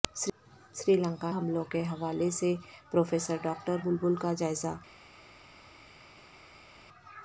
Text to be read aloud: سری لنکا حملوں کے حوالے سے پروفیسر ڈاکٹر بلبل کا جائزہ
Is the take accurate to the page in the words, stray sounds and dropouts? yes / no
yes